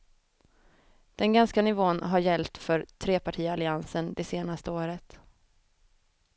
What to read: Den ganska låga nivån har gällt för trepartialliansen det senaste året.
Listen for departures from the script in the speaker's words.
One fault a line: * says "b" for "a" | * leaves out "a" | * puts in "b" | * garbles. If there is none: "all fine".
* leaves out "låga"